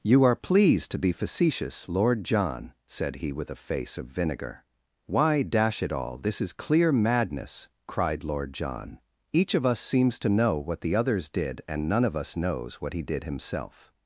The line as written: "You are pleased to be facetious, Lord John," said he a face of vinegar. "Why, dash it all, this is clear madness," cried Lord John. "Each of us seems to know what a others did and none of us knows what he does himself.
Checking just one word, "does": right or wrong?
wrong